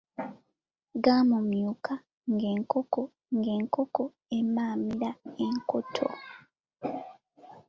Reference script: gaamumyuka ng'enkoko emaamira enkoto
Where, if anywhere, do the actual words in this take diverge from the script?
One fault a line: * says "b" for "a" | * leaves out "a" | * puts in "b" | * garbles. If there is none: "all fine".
* puts in "ng'enkoko"